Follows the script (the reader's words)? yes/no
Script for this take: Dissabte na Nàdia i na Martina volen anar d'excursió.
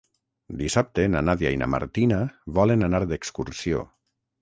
yes